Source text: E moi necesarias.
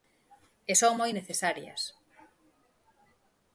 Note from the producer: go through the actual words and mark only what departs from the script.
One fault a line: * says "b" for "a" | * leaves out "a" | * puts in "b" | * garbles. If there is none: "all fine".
* puts in "son"